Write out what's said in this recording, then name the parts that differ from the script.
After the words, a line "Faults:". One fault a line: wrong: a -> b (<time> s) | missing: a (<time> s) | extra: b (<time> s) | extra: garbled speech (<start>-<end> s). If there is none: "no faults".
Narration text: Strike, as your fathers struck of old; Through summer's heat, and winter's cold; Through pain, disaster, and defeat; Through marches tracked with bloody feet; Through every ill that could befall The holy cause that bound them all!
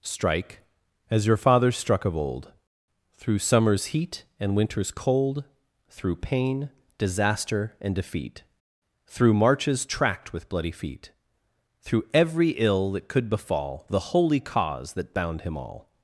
Strike, as your fathers struck of old; Through summer's heat, and winter's cold; Through pain, disaster, and defeat; Through marches tracked with bloody feet; Through every ill that could befall The holy cause that bound him all!
Faults:
wrong: them -> him (15.4 s)